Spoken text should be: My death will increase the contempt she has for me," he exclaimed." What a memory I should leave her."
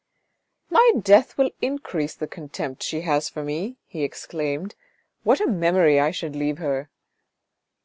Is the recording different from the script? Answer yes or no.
no